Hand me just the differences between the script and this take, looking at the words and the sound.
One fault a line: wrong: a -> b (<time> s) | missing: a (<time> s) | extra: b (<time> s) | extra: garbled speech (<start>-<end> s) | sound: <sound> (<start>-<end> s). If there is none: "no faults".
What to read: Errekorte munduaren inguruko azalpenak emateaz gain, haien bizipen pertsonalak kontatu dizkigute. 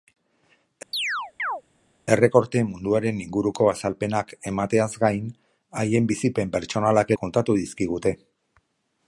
sound: chirp (0.9-1.6 s)